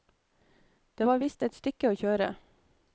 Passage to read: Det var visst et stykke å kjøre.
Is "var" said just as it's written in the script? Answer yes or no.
yes